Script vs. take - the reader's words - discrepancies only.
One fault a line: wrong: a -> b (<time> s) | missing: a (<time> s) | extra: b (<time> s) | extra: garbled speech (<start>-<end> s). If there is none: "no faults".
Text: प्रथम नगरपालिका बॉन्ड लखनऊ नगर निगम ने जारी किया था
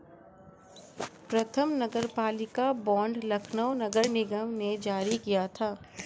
no faults